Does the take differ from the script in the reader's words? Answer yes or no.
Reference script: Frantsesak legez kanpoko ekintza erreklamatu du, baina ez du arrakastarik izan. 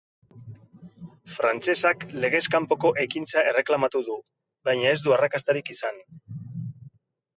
no